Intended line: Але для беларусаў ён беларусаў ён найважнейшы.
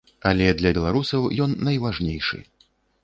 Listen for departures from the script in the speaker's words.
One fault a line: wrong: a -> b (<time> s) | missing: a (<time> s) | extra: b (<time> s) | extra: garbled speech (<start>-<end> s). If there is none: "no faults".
missing: беларусаў ён (1.6 s)